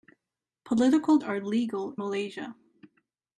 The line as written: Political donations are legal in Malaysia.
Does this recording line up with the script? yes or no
no